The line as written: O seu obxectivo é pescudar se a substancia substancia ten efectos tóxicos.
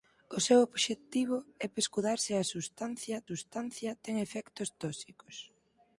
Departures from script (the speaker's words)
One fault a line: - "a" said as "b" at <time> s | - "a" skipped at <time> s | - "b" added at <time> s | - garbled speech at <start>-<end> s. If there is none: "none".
none